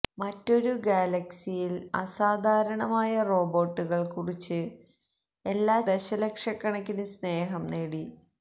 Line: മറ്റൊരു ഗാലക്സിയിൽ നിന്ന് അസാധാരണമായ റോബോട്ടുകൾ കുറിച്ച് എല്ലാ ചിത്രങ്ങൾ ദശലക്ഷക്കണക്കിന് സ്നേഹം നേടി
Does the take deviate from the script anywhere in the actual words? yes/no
yes